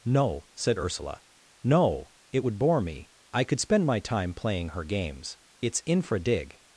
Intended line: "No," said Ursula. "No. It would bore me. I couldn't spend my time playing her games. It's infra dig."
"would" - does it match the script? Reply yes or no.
yes